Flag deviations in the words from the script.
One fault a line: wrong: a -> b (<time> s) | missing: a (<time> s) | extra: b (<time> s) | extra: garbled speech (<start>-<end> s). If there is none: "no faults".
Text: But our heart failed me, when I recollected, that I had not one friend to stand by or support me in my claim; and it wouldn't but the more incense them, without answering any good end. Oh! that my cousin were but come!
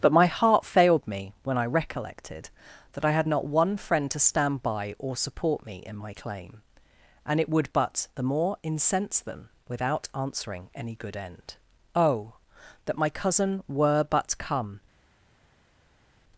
wrong: our -> my (0.1 s)
wrong: wouldn't -> would (7.5 s)